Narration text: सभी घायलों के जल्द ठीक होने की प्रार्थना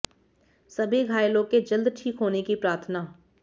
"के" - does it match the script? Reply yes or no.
yes